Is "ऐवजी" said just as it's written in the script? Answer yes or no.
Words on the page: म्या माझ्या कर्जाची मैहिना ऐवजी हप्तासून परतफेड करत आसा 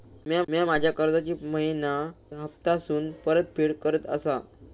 no